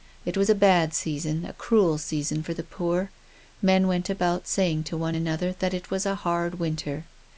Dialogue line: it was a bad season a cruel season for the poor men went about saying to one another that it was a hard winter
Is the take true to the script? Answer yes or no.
yes